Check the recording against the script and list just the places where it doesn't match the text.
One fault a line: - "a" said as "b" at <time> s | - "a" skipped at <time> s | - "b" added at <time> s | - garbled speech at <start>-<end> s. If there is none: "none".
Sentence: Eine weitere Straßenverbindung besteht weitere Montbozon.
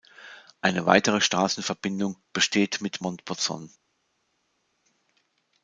- "weitere" said as "mit" at 2.8 s